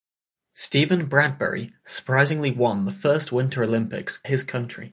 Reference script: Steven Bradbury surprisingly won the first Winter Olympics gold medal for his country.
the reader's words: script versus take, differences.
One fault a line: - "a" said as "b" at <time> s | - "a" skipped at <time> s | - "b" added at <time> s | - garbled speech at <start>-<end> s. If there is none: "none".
- "gold medal for" skipped at 4.2 s